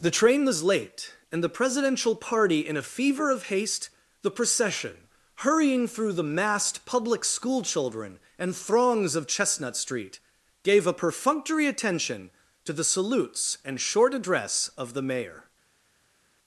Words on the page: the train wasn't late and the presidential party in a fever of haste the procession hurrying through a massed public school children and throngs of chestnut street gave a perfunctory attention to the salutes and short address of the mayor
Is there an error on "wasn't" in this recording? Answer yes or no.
yes